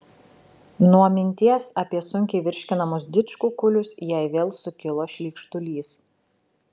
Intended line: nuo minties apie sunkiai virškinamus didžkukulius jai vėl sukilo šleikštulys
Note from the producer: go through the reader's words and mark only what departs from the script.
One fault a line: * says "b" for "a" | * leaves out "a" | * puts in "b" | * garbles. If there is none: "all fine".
all fine